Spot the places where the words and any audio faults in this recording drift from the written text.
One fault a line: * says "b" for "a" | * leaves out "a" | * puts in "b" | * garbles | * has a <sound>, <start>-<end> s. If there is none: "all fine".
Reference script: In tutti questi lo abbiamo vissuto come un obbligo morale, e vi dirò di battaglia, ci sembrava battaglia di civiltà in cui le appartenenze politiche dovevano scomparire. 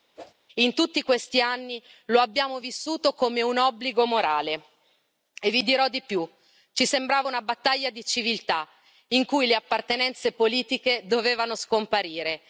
* has a whoosh, 0.2-0.3 s
* puts in "anni"
* says "più" for "battaglia"
* puts in "una"